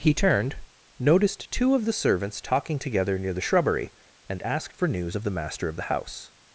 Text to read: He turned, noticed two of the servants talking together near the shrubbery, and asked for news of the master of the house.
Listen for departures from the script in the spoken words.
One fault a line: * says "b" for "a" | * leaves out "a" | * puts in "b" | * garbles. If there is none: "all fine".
all fine